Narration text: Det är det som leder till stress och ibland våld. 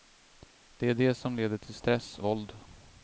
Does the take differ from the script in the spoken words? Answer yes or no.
yes